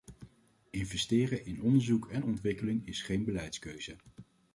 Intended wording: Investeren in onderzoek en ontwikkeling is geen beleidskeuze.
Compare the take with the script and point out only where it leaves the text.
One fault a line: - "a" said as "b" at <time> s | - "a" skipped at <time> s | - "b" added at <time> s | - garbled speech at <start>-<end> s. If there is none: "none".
none